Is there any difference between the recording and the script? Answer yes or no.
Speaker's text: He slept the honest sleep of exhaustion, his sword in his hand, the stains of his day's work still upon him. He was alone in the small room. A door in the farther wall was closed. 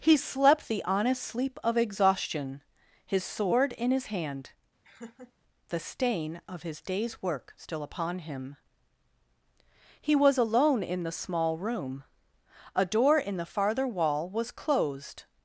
yes